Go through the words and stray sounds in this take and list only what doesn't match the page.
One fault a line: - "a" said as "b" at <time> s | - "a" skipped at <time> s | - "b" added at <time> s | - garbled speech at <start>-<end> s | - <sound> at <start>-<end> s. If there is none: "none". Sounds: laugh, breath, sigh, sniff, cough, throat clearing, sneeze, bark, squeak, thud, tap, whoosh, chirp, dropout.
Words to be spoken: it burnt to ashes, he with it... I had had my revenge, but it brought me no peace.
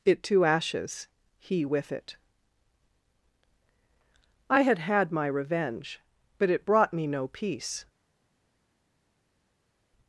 - "burnt" skipped at 0.2 s